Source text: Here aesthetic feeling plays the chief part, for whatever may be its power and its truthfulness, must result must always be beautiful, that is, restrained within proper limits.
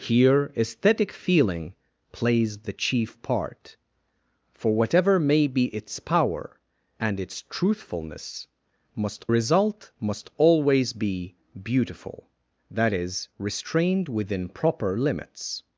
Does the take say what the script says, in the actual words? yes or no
yes